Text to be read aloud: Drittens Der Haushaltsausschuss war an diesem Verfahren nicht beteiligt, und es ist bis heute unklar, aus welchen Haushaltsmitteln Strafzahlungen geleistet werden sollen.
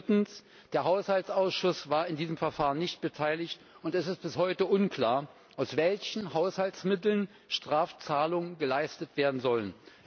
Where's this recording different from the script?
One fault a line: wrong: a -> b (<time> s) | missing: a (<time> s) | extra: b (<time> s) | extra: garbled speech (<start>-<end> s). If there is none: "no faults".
no faults